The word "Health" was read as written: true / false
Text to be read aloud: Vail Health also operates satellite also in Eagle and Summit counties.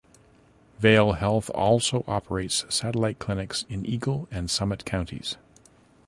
true